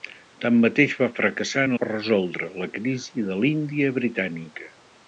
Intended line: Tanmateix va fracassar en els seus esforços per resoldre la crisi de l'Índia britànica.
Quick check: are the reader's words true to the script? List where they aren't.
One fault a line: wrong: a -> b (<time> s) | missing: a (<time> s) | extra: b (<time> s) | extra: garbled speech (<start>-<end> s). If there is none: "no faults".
missing: els seus esforços (1.7 s)